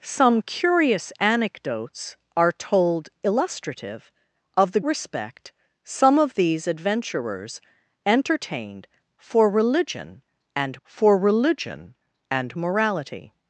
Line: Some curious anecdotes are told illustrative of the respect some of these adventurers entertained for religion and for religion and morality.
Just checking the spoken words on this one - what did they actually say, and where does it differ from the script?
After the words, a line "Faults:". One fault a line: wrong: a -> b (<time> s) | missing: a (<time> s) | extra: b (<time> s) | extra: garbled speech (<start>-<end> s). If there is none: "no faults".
Some curious anecdotes are told illustrative of the respect some of these adventurers entertained for religion and for religion and morality.
Faults:
no faults